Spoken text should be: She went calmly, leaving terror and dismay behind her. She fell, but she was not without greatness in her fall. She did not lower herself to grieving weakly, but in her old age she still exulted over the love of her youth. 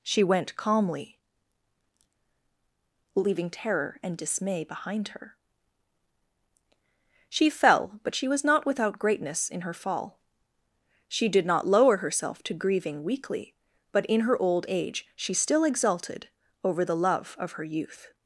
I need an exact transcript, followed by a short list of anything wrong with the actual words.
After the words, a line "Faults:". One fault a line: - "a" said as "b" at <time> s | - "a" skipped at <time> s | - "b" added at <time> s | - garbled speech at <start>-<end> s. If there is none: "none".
She went calmly, leaving terror and dismay behind her. She fell, but she was not without greatness in her fall. She did not lower herself to grieving weakly, but in her old age she still exulted over the love of her youth.
Faults:
none